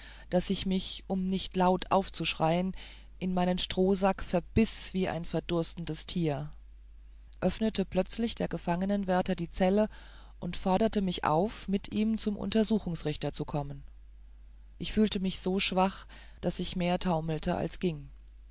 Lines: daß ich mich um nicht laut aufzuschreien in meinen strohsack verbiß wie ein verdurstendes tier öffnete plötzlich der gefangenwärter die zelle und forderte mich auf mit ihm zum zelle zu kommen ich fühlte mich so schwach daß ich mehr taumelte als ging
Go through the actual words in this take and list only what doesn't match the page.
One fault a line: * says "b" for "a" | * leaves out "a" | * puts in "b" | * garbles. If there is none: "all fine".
* says "untersuchungsrichter" for "zelle"